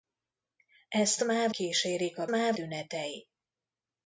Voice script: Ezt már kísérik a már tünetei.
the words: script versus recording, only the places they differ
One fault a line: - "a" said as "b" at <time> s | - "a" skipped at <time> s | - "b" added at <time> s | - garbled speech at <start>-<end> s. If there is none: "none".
none